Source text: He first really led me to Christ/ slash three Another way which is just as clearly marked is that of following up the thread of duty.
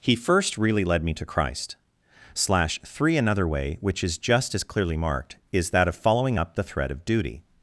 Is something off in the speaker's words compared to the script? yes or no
no